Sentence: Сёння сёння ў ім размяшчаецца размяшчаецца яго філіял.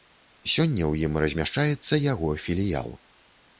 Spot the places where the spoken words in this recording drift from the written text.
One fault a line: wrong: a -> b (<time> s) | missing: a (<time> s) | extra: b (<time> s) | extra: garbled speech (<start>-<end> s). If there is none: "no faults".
missing: сёння (0.8 s)
missing: размяшчаецца (2.0 s)